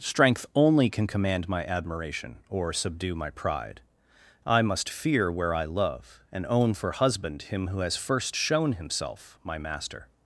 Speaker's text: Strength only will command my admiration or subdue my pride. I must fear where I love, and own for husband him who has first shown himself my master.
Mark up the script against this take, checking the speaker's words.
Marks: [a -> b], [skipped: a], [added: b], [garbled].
Strength only [will -> can] command my admiration or subdue my pride. I must fear where I love, and own for husband him who has first shown himself my master.